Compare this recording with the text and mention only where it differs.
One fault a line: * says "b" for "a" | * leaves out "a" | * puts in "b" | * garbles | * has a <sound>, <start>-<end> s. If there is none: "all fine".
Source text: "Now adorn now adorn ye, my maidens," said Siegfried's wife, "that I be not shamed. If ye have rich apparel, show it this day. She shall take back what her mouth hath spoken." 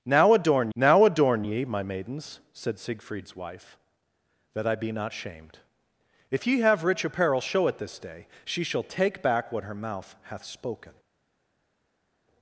all fine